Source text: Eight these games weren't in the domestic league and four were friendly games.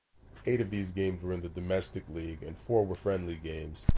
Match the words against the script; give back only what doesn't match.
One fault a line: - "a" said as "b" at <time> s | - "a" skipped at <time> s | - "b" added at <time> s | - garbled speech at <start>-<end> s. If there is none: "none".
- "of" added at 0.6 s
- "weren't" said as "were" at 1.2 s